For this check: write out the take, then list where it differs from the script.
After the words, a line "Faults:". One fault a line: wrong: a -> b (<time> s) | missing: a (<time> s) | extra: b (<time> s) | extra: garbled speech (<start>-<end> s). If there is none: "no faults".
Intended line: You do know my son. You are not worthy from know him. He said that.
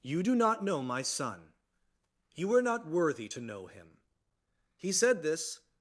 You do not know my son. You are not worthy to know him. He said this.
Faults:
extra: not (0.3 s)
wrong: from -> to (3.3 s)
wrong: that -> this (5.2 s)